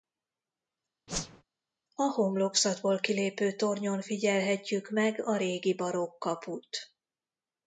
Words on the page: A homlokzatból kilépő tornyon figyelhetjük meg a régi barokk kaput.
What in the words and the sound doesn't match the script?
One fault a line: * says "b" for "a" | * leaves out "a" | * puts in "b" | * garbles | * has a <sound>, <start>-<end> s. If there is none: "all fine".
* has a whoosh, 1.1-1.4 s